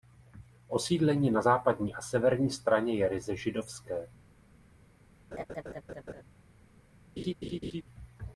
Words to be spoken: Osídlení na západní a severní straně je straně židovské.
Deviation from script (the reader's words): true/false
true